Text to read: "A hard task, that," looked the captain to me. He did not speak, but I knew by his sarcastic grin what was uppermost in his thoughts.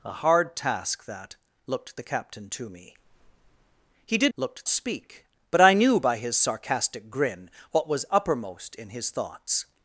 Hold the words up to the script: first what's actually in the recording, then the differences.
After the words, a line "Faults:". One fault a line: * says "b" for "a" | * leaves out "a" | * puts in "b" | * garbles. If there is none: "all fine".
"A hard task, that," looked the captain to me. He did looked speak, but I knew by his sarcastic grin what was uppermost in his thoughts.
Faults:
* says "looked" for "not"